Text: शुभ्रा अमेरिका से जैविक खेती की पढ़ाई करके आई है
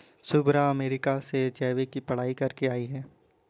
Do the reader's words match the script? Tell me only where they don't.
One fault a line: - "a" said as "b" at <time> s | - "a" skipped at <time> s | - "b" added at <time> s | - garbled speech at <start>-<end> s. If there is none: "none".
- "खेती" skipped at 1.9 s